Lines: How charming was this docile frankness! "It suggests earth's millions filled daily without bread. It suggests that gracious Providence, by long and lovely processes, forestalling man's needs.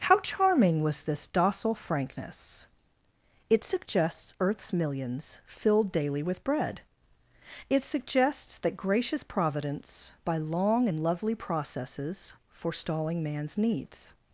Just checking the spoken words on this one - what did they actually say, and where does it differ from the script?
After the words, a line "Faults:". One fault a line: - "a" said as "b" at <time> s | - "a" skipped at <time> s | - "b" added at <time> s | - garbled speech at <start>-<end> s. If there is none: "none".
How charming was this docile frankness! "It suggests earth's millions filled daily with bread. It suggests that gracious Providence, by long and lovely processes, forestalling man's needs.
Faults:
- "without" said as "with" at 6.2 s